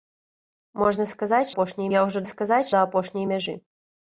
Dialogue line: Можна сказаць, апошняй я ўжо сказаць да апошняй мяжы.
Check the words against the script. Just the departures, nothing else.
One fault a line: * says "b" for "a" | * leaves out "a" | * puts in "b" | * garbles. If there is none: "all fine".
all fine